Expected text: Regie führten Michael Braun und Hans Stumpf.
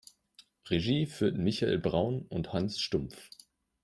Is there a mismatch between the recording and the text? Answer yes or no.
no